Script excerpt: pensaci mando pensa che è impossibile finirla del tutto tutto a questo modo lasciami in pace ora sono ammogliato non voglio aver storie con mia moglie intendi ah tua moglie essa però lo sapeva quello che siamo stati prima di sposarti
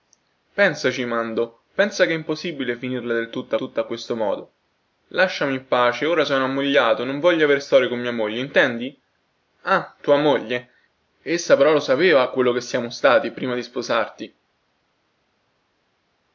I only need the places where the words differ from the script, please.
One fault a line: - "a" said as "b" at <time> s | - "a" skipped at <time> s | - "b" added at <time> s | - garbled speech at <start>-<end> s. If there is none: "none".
none